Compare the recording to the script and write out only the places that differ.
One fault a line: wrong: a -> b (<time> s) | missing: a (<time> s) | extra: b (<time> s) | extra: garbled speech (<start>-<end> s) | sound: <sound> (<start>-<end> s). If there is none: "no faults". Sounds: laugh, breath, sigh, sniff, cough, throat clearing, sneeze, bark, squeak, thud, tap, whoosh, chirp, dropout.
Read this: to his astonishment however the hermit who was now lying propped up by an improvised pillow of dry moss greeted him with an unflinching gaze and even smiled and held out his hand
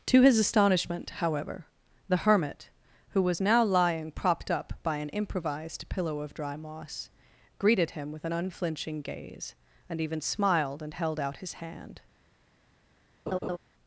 sound: laugh (13.3-13.6 s)